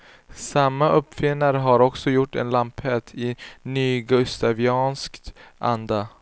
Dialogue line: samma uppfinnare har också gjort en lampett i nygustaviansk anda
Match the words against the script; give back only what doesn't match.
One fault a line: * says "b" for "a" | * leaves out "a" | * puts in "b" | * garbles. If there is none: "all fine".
all fine